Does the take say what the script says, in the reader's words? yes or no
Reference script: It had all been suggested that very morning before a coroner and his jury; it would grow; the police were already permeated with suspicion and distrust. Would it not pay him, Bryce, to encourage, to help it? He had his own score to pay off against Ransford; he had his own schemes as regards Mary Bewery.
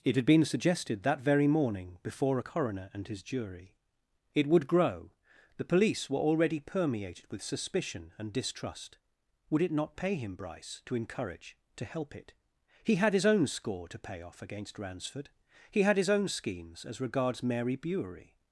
no